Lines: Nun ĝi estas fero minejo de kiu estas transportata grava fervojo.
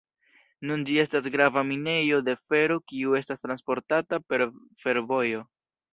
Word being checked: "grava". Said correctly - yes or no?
no